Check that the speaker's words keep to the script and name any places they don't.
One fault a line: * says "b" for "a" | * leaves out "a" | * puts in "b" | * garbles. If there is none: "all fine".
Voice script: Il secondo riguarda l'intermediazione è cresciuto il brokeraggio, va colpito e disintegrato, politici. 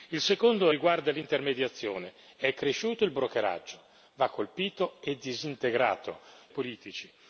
all fine